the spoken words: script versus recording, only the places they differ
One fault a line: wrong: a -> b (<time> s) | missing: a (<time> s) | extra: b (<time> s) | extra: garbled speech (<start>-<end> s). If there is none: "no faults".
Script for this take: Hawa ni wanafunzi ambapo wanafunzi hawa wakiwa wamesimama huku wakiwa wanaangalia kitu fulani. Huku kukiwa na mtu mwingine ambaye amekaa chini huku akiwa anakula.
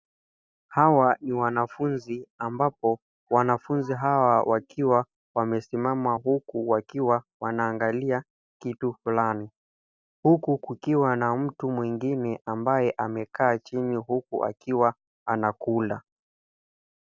no faults